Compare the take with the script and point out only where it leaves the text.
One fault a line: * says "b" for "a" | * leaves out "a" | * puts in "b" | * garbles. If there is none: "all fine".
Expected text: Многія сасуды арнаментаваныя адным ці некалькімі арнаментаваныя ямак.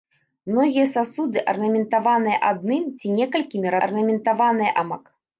all fine